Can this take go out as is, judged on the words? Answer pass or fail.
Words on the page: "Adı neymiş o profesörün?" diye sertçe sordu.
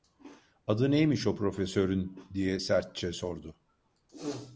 pass